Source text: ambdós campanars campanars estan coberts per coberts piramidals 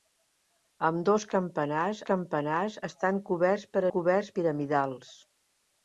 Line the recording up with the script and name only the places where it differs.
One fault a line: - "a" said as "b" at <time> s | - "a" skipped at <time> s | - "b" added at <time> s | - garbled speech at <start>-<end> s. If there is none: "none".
none